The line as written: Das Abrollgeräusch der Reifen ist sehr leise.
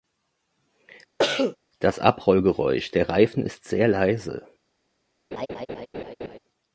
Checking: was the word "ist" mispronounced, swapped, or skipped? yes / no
no